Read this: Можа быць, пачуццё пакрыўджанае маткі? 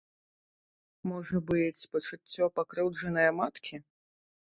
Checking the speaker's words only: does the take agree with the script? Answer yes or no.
yes